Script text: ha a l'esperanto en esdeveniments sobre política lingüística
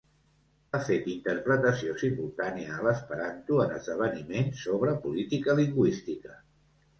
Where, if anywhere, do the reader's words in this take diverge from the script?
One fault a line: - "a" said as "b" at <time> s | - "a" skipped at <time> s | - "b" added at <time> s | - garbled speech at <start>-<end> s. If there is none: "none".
- "fet interpretació simultània" added at 0.9 s